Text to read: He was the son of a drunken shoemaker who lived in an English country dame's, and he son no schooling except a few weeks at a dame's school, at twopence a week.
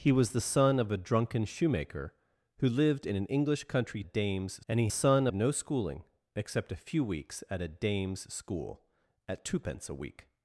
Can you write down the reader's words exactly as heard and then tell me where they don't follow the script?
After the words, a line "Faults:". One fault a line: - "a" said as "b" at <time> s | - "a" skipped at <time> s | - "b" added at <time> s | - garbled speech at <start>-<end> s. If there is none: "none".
He was the son of a drunken shoemaker who lived in an English country dame's, and he son no schooling except a few weeks at a dame's school, at twopence a week.
Faults:
none